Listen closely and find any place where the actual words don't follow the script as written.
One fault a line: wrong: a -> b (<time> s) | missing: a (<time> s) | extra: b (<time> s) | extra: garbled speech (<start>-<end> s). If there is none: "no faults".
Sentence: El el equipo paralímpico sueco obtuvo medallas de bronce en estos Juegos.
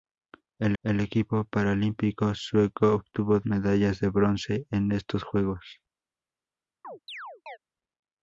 no faults